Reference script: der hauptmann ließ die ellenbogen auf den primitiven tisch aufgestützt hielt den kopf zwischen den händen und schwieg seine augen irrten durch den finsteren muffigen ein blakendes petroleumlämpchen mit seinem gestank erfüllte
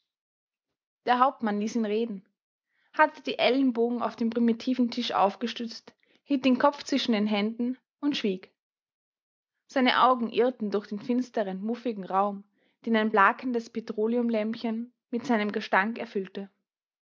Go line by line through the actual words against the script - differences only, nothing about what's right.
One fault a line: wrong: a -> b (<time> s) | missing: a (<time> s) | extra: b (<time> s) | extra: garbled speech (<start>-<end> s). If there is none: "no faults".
extra: ihn reden hatte (1.8 s)
extra: raum den (12.0 s)